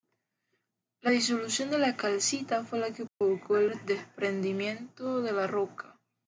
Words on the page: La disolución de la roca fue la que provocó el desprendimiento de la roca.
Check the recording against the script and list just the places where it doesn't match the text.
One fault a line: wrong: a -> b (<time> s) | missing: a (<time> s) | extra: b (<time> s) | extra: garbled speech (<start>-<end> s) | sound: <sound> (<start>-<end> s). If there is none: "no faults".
wrong: roca -> calcita (1.9 s)
sound: dropout (3.1-3.2 s)